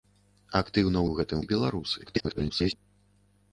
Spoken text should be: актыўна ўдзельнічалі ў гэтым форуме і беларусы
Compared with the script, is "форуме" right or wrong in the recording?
wrong